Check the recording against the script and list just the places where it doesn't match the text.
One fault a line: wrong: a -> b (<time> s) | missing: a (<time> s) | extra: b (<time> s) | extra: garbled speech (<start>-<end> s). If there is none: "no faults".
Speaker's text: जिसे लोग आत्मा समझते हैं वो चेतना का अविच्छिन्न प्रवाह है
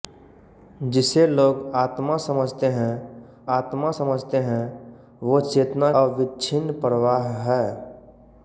extra: आत्मा समझते हैं (3.5 s)
missing: का (5.9 s)